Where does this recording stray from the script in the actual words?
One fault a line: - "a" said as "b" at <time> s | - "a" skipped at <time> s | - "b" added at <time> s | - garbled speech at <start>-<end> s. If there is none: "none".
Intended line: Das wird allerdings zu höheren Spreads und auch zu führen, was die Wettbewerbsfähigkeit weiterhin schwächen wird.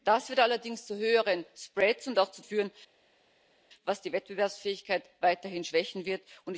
none